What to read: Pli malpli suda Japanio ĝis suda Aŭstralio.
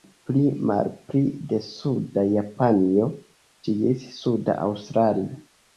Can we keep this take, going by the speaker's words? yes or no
no